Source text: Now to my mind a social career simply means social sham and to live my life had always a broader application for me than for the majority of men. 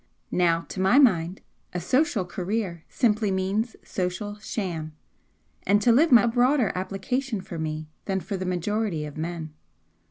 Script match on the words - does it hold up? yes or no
no